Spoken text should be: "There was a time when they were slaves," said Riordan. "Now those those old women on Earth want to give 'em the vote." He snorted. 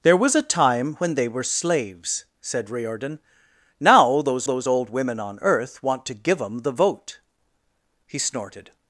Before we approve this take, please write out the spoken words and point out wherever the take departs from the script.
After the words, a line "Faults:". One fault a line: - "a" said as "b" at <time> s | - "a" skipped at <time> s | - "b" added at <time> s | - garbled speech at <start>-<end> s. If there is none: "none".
"There was a time when they were slaves," said Riordan. "Now those those old women on Earth want to give 'em the vote." He snorted.
Faults:
none